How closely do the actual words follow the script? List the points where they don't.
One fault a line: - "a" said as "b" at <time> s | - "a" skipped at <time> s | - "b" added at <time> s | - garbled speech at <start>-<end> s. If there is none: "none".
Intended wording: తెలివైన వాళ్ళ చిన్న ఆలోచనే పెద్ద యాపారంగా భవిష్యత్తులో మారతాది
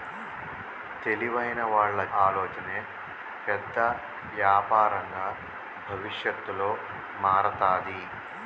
- "చిన్న" skipped at 2.0 s